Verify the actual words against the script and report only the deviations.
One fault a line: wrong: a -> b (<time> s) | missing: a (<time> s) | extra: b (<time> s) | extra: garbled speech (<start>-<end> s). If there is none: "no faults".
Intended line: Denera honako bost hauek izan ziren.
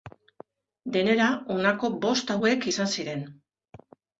no faults